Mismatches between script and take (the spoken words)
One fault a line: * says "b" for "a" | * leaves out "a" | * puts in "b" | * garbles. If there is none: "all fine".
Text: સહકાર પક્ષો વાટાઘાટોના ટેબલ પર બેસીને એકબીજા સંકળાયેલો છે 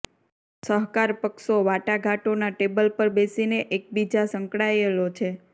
all fine